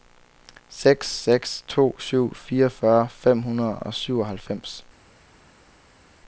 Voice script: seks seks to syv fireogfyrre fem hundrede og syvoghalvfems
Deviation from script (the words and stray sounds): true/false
false